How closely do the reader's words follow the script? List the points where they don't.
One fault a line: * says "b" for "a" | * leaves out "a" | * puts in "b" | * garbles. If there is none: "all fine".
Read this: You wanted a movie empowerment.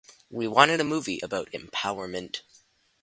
* says "We" for "You"
* puts in "about"